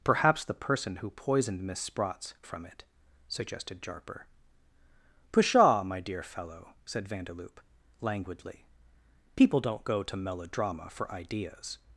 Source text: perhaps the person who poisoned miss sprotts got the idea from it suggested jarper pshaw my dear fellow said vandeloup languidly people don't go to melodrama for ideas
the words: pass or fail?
fail